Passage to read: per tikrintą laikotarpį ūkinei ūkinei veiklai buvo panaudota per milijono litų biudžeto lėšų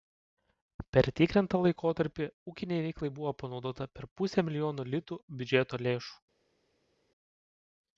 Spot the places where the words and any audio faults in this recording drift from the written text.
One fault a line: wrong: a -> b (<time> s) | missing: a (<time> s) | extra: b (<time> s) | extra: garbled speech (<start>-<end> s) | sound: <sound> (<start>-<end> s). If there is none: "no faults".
missing: ūkinei (2.8 s)
extra: pusę (4.2 s)